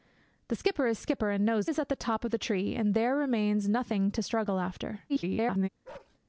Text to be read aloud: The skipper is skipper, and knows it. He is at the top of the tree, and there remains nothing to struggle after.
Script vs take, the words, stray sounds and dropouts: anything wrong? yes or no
yes